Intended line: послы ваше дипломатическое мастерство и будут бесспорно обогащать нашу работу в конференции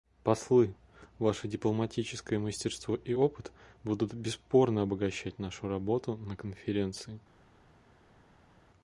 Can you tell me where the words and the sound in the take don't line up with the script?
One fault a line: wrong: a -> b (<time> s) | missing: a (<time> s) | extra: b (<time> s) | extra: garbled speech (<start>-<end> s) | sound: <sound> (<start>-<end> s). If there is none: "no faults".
extra: опыт (3.1 s)
wrong: в -> на (6.2 s)